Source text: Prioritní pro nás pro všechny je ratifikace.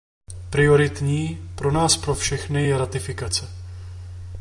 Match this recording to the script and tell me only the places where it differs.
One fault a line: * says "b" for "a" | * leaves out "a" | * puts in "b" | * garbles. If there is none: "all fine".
all fine